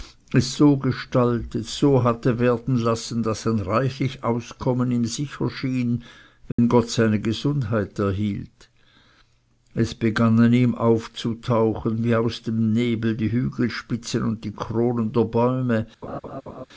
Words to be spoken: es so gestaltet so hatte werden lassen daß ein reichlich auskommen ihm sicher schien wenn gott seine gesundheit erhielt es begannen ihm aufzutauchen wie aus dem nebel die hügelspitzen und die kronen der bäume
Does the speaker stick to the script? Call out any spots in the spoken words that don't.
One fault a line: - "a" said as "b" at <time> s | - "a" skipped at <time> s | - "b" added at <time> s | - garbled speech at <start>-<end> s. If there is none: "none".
none